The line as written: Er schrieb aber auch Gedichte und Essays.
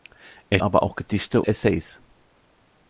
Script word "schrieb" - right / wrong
wrong